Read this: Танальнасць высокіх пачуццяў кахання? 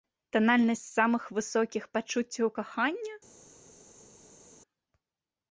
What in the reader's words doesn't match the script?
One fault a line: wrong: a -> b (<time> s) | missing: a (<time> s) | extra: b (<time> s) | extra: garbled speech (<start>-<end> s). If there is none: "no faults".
extra: самых (1.0 s)